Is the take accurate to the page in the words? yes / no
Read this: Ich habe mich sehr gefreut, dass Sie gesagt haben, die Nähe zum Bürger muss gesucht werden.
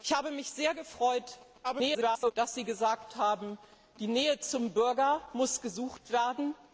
no